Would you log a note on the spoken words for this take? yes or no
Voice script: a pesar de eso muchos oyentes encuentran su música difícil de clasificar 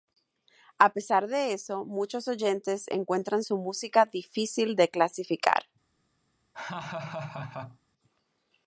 no